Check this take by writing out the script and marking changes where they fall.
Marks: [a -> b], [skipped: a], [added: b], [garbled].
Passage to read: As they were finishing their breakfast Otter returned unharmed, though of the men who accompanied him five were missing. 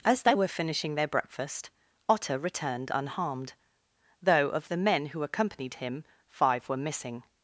As they were finishing their breakfast Otter returned unharmed, though of the men who accompanied him five were missing.